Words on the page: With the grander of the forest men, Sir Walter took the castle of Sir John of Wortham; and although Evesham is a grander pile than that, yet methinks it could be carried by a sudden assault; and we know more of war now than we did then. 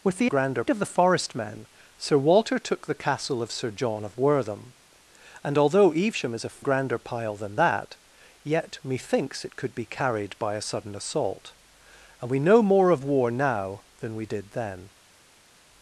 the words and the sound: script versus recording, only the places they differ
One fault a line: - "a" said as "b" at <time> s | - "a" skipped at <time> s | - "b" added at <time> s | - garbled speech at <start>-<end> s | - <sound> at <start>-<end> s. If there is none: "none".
none